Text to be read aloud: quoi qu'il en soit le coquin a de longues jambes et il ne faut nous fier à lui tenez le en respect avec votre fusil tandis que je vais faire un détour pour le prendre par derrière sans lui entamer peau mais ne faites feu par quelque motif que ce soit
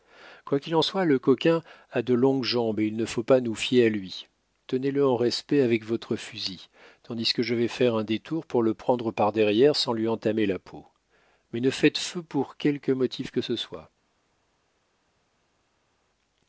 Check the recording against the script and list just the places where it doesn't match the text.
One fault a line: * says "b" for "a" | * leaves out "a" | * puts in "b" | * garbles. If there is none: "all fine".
* puts in "pas"
* puts in "la"
* says "pour" for "par"